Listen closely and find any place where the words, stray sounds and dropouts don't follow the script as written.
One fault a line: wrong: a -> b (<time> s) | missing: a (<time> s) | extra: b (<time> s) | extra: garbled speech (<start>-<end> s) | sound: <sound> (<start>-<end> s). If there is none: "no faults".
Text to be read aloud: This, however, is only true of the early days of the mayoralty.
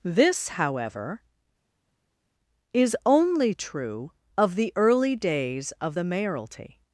no faults